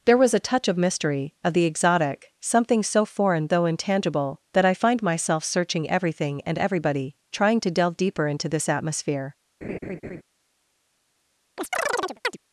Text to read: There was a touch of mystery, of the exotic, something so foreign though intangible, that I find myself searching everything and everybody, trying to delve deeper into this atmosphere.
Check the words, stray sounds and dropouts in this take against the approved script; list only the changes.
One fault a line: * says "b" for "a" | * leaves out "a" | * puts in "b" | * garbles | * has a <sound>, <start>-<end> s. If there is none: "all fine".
* has a laugh, 9.6-10.2 s
* has a chirp, 11.6-12.4 s